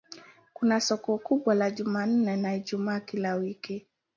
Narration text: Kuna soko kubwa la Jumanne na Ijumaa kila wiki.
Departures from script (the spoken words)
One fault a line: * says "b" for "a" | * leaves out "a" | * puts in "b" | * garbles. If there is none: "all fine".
all fine